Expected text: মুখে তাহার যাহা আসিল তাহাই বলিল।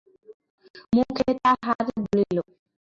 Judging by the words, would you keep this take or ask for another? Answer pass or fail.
fail